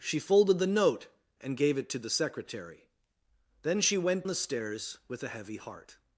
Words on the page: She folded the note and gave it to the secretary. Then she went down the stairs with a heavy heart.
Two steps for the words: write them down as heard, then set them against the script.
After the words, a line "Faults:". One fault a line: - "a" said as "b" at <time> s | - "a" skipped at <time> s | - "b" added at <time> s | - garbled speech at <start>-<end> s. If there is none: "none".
She folded the note and gave it to the secretary. Then she went the stairs with a heavy heart.
Faults:
- "down" skipped at 4.2 s